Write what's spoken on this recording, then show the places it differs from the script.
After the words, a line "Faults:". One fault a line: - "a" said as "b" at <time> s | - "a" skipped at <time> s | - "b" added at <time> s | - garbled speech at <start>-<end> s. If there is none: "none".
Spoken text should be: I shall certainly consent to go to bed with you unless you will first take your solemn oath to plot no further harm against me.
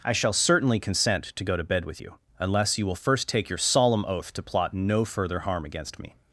I shall certainly consent to go to bed with you unless you will first take your solemn oath to plot no further harm against me.
Faults:
none